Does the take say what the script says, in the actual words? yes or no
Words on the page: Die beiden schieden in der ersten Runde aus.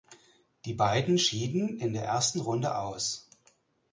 yes